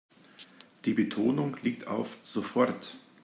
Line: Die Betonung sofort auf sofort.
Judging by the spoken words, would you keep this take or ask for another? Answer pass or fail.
fail